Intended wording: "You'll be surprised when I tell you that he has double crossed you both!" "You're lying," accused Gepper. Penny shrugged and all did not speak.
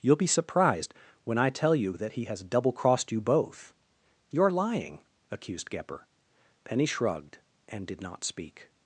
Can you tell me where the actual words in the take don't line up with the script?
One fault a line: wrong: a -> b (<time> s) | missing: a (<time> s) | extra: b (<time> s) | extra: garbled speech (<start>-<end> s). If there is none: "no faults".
missing: all (7.8 s)